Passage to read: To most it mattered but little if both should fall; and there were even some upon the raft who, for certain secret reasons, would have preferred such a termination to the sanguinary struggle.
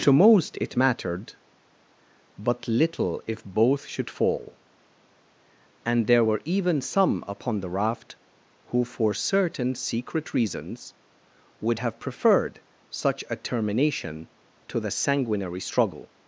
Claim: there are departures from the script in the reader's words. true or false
false